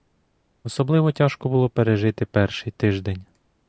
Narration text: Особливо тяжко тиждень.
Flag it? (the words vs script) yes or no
yes